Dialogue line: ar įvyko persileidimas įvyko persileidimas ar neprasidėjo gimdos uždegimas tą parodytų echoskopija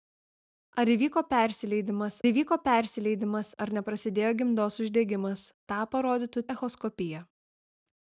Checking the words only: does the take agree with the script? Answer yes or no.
yes